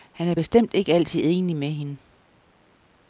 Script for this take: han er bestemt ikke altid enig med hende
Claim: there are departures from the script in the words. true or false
false